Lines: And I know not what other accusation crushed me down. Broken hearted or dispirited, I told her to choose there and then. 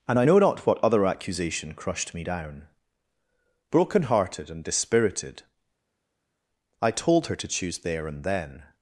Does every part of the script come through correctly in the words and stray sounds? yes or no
no